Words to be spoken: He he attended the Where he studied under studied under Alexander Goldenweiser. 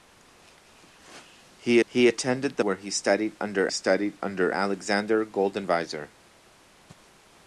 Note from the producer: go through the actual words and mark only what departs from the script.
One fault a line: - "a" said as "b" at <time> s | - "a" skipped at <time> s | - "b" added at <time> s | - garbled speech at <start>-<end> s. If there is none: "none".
none